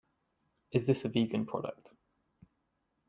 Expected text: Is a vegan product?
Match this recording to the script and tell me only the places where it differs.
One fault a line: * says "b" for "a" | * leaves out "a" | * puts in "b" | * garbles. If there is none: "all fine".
* puts in "this"